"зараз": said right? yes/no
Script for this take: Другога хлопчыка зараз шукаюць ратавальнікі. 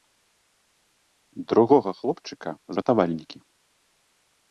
no